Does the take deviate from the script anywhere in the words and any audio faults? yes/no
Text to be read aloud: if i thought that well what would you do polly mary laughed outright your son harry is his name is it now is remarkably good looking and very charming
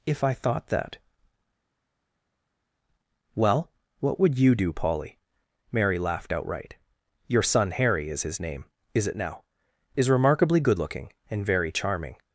no